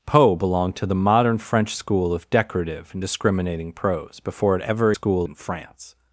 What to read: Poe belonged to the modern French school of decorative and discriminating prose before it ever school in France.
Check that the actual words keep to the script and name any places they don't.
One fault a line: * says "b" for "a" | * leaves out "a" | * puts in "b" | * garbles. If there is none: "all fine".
all fine